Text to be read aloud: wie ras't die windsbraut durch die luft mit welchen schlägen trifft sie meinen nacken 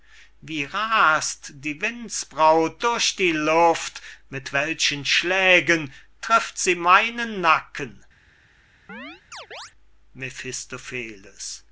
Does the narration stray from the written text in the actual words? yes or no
no